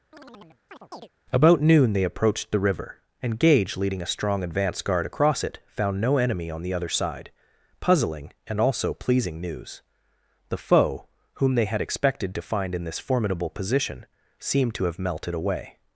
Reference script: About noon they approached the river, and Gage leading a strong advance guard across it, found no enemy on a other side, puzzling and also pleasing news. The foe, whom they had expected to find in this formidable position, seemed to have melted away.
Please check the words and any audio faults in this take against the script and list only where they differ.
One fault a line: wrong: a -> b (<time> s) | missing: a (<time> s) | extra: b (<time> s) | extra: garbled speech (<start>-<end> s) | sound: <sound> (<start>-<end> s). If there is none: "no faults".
sound: chirp (0.1-1.1 s)
wrong: a -> the (6.6 s)